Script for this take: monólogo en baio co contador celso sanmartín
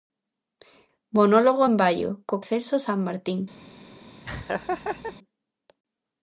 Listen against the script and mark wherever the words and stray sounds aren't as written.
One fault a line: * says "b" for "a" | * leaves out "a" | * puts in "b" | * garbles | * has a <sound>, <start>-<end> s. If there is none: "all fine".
* leaves out "contador"
* has a laugh, 4.2-5.2 s